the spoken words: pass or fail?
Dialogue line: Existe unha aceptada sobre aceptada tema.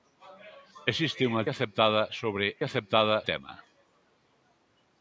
pass